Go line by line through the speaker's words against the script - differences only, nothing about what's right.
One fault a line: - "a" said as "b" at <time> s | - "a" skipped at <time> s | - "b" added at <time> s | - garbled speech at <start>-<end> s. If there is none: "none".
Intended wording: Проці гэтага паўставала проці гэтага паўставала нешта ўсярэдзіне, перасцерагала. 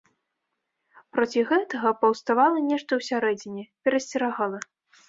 - "проці гэтага паўставала" skipped at 2.6 s